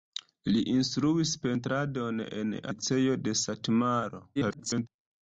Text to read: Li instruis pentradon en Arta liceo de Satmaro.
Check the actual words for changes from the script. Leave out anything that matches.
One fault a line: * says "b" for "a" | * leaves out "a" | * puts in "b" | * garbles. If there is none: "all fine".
* leaves out "Arta"
* garbles